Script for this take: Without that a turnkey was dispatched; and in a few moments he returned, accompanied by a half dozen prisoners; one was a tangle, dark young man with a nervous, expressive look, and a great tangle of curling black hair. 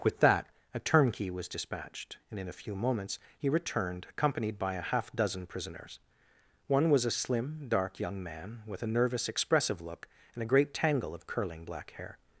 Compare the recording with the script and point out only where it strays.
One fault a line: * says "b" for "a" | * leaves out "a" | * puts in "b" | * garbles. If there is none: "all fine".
* says "With" for "Without"
* says "slim" for "tangle"